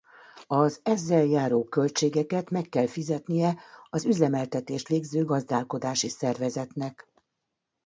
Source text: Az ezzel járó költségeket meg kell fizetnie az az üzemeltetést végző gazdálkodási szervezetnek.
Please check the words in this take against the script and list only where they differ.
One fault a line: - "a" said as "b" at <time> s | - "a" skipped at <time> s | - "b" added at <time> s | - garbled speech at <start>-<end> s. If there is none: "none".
- "az" skipped at 4.0 s